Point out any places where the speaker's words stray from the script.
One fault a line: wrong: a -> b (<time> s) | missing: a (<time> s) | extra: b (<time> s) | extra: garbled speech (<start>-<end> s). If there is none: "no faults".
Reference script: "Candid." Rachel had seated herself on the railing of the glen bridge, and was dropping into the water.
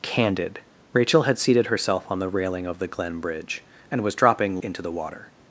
no faults